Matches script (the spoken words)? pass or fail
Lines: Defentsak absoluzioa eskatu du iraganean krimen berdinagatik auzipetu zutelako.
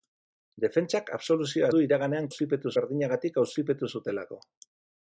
fail